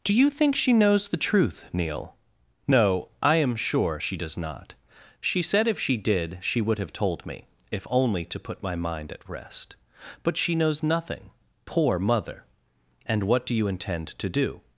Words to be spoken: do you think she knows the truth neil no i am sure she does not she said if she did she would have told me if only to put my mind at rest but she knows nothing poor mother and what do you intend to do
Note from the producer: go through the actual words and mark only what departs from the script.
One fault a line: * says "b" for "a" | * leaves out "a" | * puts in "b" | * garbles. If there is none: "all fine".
all fine